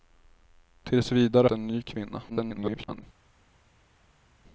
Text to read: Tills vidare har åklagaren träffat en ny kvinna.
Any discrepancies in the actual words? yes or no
yes